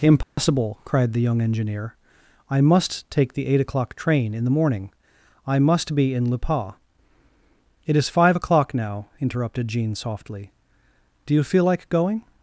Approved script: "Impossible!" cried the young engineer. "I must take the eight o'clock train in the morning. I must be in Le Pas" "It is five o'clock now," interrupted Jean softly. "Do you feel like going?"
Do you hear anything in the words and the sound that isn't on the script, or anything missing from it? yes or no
yes